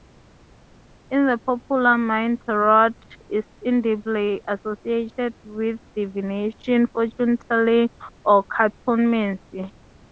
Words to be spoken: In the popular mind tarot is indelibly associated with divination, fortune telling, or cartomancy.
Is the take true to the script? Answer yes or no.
yes